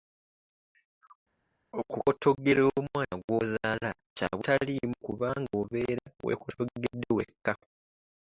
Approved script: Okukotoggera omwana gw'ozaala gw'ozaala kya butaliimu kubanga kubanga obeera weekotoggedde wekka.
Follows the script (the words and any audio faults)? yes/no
no